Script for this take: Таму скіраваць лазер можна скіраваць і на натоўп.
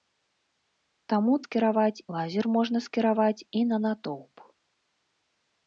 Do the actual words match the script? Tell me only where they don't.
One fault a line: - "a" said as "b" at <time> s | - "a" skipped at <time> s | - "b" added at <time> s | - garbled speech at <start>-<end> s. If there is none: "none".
none